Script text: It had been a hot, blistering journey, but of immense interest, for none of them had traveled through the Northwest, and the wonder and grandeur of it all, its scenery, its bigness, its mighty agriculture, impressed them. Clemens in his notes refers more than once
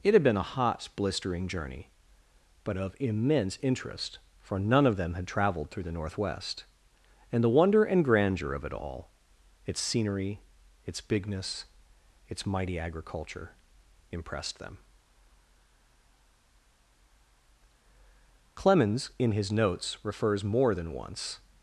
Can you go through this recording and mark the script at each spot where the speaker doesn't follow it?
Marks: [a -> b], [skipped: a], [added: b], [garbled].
It had been a hot, blistering journey, but of immense interest, for none of them had traveled through the Northwest, and the wonder and grandeur of it all, its scenery, its bigness, its mighty agriculture, impressed them. Clemens in his notes refers more than once